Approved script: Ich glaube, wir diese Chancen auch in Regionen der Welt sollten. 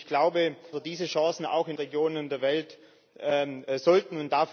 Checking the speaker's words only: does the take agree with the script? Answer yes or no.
yes